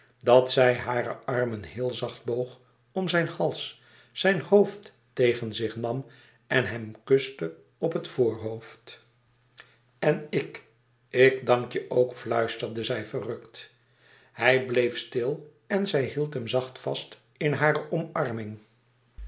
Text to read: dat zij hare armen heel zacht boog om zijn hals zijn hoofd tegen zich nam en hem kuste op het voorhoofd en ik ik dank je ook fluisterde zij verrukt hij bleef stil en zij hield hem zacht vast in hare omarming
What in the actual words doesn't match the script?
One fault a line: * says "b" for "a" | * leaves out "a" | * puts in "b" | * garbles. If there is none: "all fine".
all fine